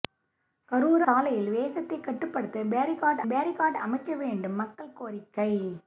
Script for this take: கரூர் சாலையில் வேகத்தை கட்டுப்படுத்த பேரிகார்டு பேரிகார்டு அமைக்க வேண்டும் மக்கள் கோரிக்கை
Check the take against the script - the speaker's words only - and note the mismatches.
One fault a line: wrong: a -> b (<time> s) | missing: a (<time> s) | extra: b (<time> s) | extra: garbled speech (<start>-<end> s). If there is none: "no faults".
no faults